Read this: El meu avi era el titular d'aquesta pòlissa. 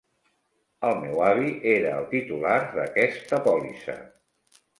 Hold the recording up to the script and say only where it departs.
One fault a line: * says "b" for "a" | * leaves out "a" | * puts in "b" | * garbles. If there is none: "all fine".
all fine